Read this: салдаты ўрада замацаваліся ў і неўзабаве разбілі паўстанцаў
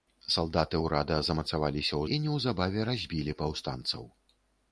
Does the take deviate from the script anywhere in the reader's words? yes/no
no